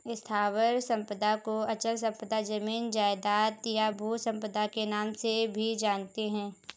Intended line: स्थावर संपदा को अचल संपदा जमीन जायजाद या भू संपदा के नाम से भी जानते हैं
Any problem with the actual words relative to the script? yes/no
no